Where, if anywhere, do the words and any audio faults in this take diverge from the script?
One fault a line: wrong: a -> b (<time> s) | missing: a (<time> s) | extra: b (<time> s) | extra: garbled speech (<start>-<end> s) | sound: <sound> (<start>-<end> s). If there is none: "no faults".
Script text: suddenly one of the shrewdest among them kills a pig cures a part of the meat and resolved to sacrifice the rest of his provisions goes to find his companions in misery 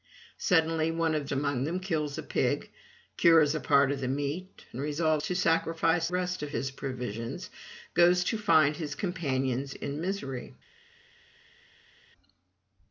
missing: the shrewdest (1.3 s)
missing: the (6.1 s)